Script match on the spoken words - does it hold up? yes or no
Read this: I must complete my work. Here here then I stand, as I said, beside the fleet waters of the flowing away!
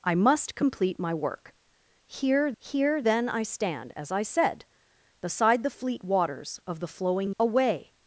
yes